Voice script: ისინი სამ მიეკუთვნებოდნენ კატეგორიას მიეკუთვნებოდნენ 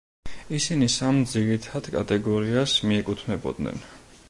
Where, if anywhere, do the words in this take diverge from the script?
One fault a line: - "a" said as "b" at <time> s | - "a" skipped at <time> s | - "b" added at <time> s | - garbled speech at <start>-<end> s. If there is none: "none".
- "მიეკუთვნებოდნენ" said as "ძირითად" at 1.3 s